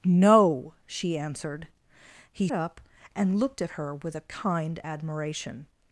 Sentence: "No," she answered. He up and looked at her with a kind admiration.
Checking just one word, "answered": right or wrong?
right